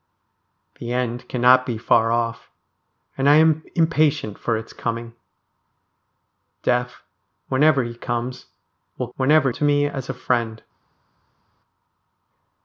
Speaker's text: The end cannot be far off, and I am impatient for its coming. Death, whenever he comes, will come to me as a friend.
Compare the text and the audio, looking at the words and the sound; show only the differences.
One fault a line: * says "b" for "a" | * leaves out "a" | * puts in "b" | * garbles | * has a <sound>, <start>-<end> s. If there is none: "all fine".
* says "whenever" for "come"